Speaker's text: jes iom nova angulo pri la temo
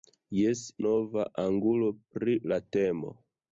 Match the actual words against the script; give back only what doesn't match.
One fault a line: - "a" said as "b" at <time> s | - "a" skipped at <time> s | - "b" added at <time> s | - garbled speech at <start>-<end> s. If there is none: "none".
- "iom" skipped at 0.6 s